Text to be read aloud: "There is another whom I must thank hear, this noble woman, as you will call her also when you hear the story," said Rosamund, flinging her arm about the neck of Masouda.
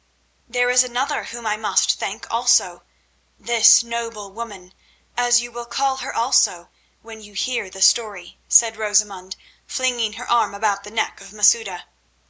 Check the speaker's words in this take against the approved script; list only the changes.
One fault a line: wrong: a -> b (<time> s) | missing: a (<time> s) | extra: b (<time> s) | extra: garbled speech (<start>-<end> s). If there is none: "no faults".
wrong: hear -> also (2.3 s)